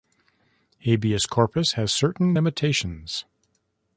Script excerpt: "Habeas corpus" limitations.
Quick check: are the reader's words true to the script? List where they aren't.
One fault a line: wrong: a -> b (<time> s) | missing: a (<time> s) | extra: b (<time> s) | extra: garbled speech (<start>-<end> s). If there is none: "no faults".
extra: has certain (1.7 s)